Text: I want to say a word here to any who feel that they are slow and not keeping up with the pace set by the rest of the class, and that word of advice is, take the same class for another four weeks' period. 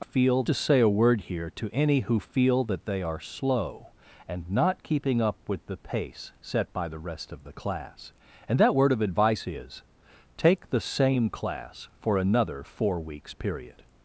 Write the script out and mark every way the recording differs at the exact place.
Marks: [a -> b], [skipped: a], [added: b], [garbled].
I [want -> feel] to say a word here to any who feel that they are slow and not keeping up with the pace set by the rest of the class, and that word of advice is, take the same class for another four weeks' period.